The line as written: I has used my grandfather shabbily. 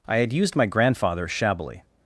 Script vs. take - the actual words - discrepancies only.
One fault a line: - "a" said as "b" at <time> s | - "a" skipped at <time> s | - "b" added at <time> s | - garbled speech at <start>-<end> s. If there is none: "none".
- "has" said as "had" at 0.2 s